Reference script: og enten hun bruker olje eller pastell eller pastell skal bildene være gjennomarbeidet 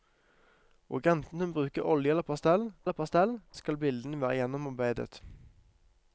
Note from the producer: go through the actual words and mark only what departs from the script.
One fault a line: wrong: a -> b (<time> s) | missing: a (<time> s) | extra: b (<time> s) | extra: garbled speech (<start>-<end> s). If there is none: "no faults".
no faults